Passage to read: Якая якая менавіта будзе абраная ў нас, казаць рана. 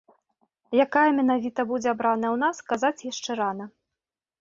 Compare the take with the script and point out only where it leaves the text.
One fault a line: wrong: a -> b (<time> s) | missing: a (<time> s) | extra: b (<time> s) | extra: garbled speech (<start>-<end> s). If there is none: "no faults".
missing: якая (1.0 s)
extra: яшчэ (3.1 s)